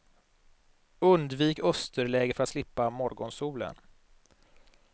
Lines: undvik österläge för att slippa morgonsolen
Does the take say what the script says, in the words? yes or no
yes